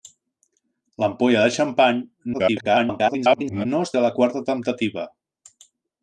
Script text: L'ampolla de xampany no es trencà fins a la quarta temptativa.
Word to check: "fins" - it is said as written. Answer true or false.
false